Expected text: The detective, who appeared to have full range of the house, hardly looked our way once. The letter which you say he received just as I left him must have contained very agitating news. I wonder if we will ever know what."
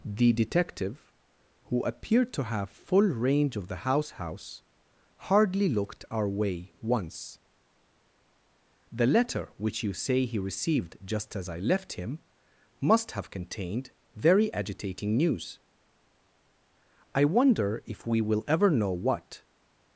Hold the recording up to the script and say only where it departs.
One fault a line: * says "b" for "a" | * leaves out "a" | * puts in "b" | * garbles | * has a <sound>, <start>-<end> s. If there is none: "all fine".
* puts in "house"